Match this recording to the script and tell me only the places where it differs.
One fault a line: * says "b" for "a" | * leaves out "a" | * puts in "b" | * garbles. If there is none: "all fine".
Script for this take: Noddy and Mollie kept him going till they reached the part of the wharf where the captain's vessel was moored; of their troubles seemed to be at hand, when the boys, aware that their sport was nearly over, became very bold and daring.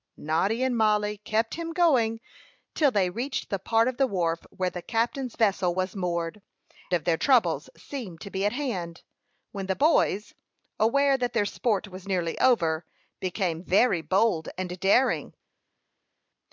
all fine